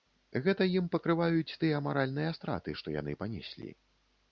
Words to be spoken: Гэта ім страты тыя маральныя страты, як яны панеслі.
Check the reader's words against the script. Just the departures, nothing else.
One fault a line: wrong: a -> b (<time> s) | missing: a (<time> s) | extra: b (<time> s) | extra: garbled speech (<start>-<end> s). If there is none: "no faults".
wrong: страты -> пакрываюць (0.9 s)
wrong: як -> што (2.8 s)